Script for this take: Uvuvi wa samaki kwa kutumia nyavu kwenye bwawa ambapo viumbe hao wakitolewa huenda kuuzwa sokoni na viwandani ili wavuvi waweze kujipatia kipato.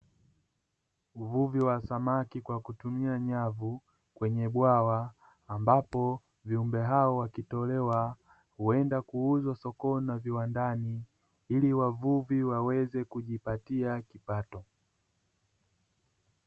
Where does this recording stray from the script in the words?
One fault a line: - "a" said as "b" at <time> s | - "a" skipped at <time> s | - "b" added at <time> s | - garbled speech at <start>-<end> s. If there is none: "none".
none